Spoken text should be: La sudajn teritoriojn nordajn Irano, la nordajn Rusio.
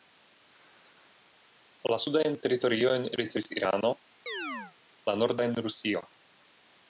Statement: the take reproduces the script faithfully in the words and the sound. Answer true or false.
false